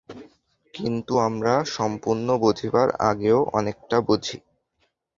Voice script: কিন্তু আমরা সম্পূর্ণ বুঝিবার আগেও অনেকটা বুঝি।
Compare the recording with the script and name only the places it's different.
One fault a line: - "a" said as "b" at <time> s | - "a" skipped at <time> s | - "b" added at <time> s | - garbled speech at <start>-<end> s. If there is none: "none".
none